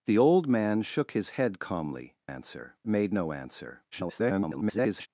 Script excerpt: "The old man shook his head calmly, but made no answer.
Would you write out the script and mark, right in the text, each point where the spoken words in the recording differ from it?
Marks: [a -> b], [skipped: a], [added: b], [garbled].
"The old man shook his head calmly, [but -> answer] made no answer. [garbled]